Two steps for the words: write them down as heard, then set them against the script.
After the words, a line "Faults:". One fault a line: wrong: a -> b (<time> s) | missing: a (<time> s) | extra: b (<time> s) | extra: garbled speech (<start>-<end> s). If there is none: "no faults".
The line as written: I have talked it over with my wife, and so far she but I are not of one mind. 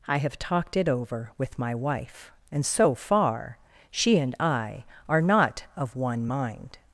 I have talked it over with my wife, and so far she and I are not of one mind.
Faults:
wrong: but -> and (4.2 s)